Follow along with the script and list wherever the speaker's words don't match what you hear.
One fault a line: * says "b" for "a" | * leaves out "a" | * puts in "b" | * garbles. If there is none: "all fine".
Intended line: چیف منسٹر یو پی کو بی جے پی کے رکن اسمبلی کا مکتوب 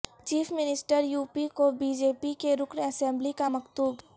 all fine